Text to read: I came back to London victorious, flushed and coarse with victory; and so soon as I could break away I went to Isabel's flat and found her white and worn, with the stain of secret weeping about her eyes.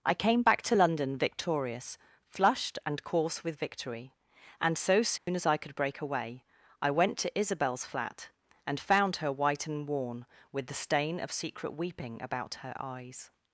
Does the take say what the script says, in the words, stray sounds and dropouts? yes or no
no